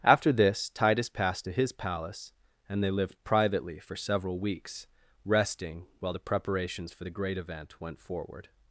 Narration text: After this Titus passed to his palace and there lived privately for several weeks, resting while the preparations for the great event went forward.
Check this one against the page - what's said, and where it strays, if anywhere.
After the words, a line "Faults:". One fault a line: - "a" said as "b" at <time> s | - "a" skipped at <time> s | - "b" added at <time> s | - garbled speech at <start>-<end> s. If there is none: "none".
After this Titus passed to his palace and they lived privately for several weeks, resting while the preparations for the great event went forward.
Faults:
- "there" said as "they" at 2.8 s